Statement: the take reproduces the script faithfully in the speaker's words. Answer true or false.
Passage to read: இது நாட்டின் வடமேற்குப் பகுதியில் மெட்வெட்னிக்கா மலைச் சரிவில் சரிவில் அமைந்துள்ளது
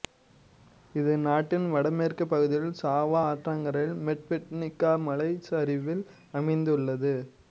false